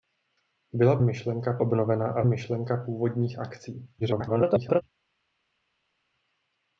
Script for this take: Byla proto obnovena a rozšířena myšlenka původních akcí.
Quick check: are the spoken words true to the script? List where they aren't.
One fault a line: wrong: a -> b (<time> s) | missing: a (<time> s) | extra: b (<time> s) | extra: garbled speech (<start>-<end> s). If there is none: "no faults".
wrong: proto -> myšlenka (1.0 s)
missing: rozšířena (2.2 s)
extra: garbled speech (4.0-4.8 s)